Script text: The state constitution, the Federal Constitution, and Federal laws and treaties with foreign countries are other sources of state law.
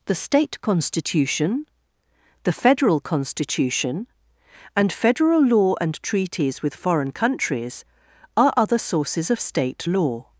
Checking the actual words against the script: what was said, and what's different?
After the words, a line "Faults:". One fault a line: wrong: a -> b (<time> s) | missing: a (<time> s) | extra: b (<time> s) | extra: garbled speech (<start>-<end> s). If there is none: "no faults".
The state constitution, the Federal Constitution, and Federal law and treaties with foreign countries are other sources of state law.
Faults:
wrong: laws -> law (5.4 s)